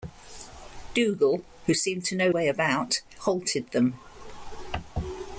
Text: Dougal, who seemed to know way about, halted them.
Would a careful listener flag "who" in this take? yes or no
no